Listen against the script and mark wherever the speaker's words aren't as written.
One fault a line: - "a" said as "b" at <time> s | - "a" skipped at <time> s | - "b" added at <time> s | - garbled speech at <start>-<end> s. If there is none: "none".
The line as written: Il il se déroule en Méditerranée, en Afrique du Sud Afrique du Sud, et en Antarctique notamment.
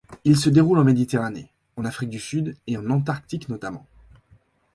- "il" skipped at 0.3 s
- "Afrique du Sud" skipped at 2.6 s